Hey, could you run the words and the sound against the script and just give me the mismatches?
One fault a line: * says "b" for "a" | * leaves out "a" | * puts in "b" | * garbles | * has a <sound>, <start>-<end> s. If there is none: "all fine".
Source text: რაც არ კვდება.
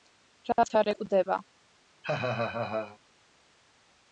* has a laugh, 2.0-3.0 s